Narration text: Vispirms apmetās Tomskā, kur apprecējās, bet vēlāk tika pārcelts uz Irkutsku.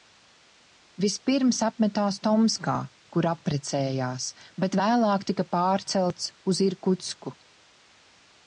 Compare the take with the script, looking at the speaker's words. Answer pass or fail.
pass